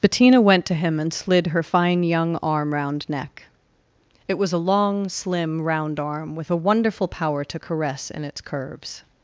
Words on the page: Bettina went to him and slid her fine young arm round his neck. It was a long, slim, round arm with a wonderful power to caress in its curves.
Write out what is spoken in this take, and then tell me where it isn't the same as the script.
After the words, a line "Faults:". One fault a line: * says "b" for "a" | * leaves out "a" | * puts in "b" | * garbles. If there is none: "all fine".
Bettina went to him and slid her fine young arm round neck. It was a long, slim, round arm with a wonderful power to caress in its curves.
Faults:
* leaves out "his"